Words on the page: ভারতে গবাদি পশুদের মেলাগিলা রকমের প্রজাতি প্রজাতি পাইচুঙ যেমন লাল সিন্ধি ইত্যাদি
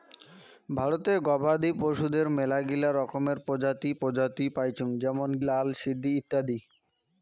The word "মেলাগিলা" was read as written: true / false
true